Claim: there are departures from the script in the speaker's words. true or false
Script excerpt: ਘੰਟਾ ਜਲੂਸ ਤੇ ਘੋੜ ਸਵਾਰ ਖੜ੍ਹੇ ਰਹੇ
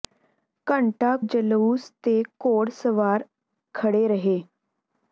false